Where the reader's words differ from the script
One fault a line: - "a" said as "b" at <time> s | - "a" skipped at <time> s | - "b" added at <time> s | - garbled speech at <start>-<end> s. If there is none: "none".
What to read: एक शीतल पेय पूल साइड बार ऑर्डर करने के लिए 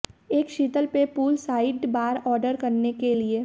none